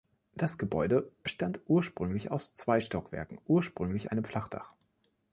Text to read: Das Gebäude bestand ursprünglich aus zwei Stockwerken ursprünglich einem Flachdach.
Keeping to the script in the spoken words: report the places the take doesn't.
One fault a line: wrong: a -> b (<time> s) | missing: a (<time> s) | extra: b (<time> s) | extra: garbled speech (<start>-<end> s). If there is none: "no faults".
no faults